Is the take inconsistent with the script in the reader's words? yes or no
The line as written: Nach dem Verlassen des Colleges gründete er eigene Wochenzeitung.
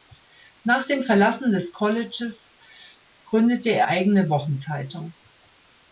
no